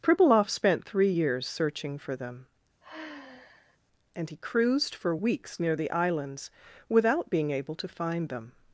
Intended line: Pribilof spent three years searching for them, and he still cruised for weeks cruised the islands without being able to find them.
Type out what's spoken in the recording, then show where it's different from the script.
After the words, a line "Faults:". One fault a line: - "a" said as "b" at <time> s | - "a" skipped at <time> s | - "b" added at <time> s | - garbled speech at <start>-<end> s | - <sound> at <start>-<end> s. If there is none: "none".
Pribilof spent three years searching for them, and he cruised for weeks near the islands without being able to find them.
Faults:
- sigh at 2.8-3.8 s
- "still" skipped at 4.4 s
- "cruised" said as "near" at 5.6 s